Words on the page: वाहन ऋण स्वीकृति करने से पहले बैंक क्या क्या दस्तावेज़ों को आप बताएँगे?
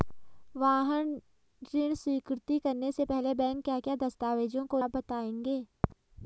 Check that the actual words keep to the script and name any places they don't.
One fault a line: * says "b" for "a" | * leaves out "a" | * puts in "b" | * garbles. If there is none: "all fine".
all fine